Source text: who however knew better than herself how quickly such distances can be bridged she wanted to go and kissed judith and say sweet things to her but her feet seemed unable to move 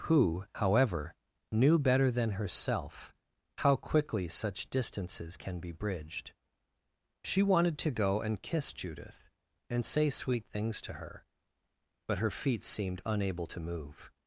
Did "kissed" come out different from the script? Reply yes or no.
yes